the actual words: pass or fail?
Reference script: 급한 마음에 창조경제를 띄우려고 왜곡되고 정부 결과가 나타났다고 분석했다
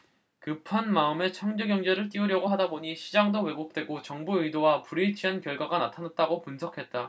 fail